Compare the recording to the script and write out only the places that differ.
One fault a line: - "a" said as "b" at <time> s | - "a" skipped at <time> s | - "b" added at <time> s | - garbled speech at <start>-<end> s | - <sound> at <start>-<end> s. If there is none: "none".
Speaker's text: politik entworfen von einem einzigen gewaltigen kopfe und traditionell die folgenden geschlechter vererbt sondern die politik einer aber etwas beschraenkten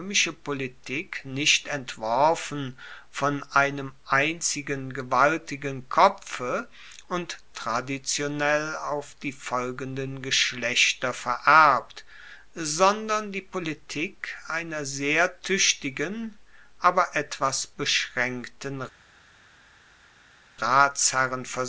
- "nicht" added at 1.2 s
- "auf" added at 8.8 s
- "sehr tuechtigen" added at 14.8 s